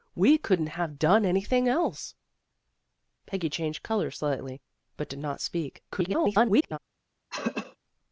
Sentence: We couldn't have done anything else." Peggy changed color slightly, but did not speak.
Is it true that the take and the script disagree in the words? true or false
true